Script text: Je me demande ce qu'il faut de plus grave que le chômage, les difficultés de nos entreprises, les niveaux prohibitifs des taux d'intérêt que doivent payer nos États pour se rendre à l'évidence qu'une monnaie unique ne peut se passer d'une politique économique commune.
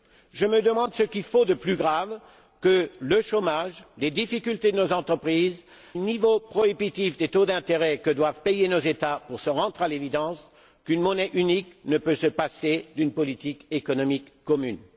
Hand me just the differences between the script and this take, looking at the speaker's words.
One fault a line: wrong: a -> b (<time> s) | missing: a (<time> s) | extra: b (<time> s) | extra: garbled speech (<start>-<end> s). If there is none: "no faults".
missing: les (5.7 s)